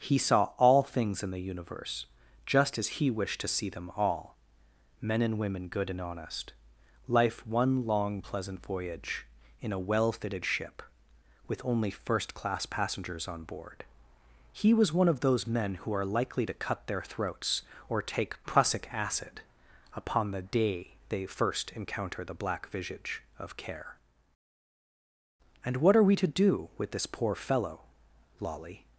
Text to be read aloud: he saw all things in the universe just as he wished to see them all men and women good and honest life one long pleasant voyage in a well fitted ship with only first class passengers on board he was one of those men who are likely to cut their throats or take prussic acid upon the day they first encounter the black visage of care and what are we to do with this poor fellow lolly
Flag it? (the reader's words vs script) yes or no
no